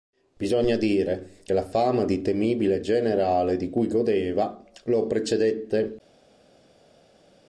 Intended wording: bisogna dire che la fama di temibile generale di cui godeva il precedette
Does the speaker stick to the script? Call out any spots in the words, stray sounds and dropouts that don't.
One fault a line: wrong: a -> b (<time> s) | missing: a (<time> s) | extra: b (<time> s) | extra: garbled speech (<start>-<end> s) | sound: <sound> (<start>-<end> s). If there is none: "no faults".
wrong: il -> lo (4.8 s)